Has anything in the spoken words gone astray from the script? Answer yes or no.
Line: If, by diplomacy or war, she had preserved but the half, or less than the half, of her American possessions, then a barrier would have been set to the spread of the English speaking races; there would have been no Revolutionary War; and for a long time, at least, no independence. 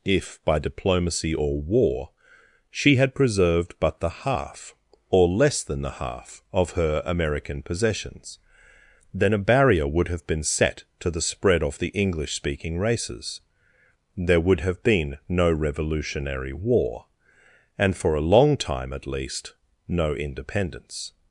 no